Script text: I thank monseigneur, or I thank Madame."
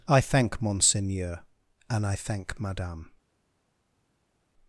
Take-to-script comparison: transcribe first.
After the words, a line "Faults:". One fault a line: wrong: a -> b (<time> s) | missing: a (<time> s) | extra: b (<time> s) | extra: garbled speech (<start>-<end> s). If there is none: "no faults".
I thank monseigneur, and I thank Madame."
Faults:
wrong: or -> and (1.9 s)